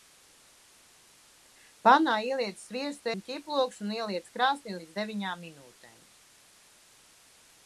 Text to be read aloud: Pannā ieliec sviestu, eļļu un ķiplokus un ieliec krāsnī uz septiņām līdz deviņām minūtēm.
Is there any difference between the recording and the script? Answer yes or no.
yes